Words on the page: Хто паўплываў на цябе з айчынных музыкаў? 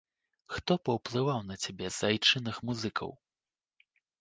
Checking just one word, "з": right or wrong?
right